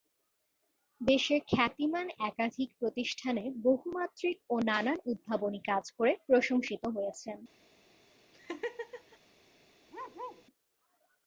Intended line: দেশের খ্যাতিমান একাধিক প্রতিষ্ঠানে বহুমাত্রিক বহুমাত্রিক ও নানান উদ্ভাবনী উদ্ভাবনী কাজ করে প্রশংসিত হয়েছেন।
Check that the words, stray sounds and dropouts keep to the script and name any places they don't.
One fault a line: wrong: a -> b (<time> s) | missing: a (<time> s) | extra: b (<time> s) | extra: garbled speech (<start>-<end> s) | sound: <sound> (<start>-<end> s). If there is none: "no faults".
missing: বহুমাত্রিক (4.4 s)
missing: উদ্ভাবনী (5.6 s)
sound: laugh (8.3-9.2 s)
sound: bark (9.9-10.4 s)